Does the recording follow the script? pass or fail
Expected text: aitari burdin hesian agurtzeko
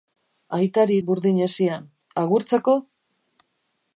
pass